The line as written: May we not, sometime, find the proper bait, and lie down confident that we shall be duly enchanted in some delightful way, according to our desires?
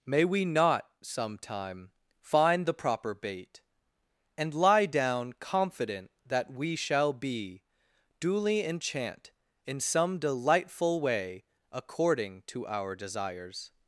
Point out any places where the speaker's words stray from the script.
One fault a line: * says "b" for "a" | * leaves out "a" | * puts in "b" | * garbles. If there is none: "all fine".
* says "enchant" for "enchanted"